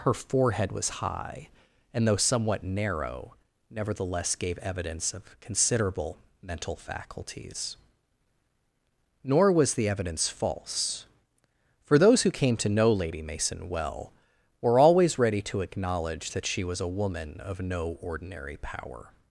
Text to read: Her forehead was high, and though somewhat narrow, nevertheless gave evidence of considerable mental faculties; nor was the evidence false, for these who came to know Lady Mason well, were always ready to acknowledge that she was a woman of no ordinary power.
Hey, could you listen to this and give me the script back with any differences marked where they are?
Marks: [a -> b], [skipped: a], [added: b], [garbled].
Her forehead was high, and though somewhat narrow, nevertheless gave evidence of considerable mental faculties; nor was the evidence false, for [these -> those] who came to know Lady Mason well, were always ready to acknowledge that she was a woman of no ordinary power.